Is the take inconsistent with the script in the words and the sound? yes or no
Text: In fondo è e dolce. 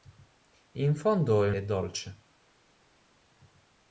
no